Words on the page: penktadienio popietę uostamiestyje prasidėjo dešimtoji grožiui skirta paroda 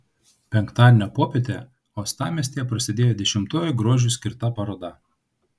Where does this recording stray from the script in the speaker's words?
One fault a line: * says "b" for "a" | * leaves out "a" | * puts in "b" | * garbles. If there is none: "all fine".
all fine